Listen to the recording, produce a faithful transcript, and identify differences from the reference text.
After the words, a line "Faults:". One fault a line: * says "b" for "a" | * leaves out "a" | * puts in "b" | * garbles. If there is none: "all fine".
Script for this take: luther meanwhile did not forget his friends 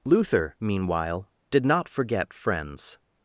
luther meanwhile did not forget friends
Faults:
* leaves out "his"